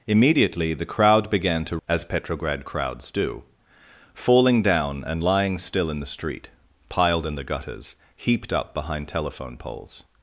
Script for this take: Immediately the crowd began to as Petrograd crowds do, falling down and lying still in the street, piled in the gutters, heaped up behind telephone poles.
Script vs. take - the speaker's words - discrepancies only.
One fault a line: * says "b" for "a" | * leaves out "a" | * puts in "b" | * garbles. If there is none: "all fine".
all fine